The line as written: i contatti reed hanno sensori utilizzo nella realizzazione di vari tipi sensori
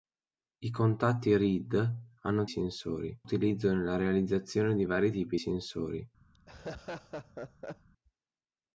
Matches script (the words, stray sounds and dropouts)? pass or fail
fail